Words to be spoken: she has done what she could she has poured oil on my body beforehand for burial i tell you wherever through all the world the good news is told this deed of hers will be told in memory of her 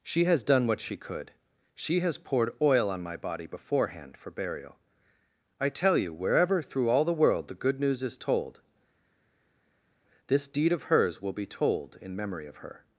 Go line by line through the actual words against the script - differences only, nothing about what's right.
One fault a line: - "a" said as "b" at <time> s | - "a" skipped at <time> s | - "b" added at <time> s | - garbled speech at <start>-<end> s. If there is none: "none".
none